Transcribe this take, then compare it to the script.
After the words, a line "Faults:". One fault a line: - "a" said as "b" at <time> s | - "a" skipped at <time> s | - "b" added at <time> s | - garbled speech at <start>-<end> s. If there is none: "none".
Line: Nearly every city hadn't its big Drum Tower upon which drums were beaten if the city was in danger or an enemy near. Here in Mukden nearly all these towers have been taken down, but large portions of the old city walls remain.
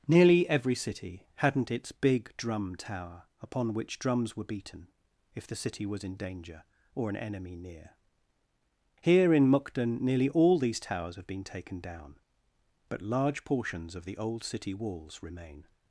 Nearly every city hadn't its big Drum Tower upon which drums were beaten if the city was in danger or an enemy near. Here in Mukden nearly all these towers have been taken down, but large portions of the old city walls remain.
Faults:
none